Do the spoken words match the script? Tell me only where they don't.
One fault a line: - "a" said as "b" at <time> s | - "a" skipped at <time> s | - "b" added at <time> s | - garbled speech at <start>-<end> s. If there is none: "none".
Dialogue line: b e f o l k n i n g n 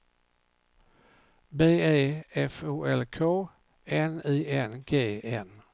none